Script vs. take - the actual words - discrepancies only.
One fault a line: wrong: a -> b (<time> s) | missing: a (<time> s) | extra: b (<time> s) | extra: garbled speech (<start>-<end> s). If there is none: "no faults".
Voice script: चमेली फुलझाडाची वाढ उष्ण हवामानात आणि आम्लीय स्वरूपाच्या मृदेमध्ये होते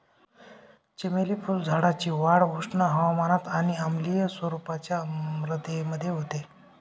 no faults